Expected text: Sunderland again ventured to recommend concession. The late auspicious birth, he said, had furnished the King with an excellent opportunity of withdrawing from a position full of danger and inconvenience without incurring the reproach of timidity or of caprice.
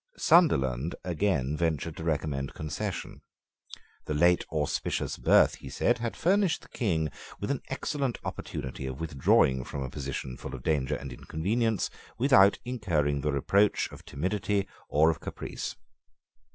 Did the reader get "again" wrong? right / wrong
right